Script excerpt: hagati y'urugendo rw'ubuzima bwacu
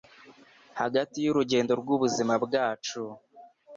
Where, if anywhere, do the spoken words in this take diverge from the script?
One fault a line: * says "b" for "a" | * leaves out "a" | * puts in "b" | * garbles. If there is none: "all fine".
all fine